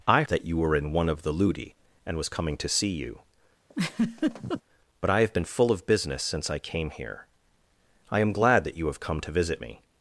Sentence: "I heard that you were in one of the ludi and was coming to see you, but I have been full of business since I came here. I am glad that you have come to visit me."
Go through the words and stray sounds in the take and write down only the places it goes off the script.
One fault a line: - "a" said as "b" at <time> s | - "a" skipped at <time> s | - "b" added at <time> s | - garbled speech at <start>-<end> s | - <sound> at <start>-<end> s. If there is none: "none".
- "heard" skipped at 0.2 s
- laugh at 3.7-4.6 s